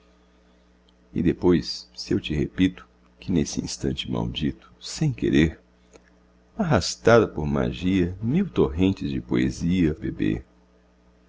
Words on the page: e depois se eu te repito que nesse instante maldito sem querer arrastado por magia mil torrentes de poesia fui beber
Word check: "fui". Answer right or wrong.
wrong